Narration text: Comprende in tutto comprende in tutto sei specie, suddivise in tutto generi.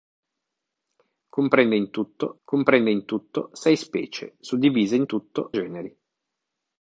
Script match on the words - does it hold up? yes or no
yes